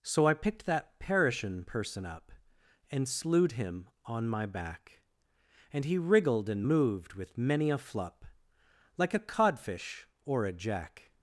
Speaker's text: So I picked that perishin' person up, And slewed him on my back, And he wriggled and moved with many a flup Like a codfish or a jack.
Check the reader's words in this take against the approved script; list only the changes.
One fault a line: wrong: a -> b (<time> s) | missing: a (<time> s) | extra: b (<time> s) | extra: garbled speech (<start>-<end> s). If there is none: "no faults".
no faults